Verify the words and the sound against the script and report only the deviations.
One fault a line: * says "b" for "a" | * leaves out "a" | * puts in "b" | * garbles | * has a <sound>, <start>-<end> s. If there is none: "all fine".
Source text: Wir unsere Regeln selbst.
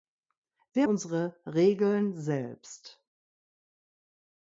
all fine